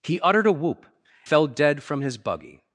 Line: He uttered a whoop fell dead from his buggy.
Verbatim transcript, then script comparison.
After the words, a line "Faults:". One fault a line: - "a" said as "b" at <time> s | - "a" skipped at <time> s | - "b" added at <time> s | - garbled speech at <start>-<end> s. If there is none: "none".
He uttered a whoop fell dead from his buggy.
Faults:
none